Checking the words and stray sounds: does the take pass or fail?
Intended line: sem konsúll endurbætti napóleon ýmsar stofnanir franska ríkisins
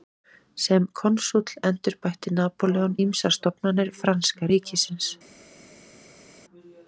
pass